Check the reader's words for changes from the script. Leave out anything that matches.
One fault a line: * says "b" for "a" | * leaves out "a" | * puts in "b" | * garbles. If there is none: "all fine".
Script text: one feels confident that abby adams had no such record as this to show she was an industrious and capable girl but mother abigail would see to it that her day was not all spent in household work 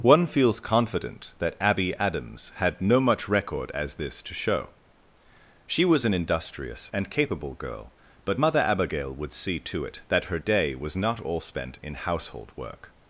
* says "much" for "such"